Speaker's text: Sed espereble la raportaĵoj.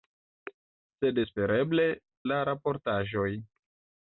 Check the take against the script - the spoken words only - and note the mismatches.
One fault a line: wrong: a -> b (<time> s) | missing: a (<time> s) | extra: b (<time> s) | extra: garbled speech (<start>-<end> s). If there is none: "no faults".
no faults